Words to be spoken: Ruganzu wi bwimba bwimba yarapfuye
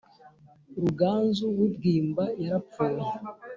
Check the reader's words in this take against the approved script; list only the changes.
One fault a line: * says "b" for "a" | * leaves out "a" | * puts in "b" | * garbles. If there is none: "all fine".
* leaves out "bwimba"